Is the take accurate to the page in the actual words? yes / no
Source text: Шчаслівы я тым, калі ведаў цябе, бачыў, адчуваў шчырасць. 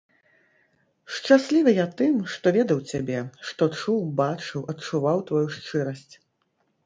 no